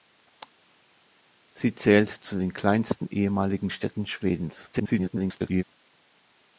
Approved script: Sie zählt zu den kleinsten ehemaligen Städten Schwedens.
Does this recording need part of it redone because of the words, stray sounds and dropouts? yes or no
yes